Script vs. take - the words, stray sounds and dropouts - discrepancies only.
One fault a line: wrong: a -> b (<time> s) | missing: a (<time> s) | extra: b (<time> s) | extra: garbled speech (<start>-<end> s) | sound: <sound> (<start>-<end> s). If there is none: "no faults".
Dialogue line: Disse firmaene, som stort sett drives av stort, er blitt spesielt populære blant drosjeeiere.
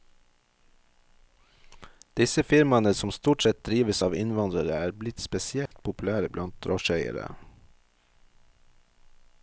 wrong: stort -> innvandrere (4.1 s)
sound: dropout (5.7-5.7 s)